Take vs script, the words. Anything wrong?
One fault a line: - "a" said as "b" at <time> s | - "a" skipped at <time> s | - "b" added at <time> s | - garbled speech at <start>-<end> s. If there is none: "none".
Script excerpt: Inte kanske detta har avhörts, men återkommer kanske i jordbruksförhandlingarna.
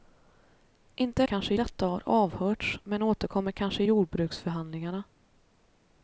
none